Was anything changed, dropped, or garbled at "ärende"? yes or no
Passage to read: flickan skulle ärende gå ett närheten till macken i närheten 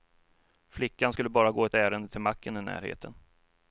yes